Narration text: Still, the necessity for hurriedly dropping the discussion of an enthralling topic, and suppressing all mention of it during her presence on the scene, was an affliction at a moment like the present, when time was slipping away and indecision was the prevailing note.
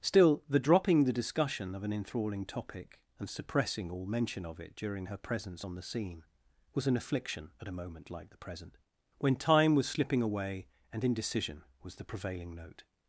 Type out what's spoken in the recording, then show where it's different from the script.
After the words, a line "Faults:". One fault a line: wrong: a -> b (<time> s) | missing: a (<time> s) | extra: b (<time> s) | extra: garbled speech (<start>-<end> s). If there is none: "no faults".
Still, the dropping the discussion of an enthralling topic, and suppressing all mention of it during her presence on the scene, was an affliction at a moment like the present, when time was slipping away and indecision was the prevailing note.
Faults:
missing: necessity for hurriedly (0.6 s)